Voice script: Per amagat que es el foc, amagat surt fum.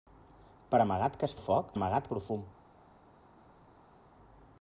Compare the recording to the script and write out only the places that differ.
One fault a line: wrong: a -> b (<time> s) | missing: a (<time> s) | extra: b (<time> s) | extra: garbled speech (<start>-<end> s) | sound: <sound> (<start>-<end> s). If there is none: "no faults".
no faults